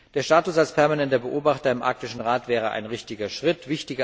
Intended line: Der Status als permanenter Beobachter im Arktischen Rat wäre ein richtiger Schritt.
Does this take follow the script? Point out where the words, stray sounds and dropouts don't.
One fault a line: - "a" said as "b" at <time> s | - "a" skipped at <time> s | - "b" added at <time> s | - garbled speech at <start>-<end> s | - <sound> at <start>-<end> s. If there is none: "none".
none